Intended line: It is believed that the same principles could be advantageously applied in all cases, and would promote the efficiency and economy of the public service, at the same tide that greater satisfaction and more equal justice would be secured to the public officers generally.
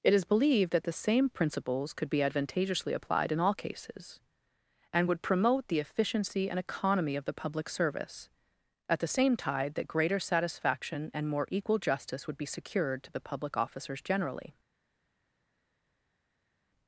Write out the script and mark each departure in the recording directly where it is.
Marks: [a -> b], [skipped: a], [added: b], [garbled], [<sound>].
It is believed that the same principles could be advantageously applied in all cases, and would promote the efficiency and economy of the public service, at the same tide that greater satisfaction and more equal justice would be secured to the public officers generally.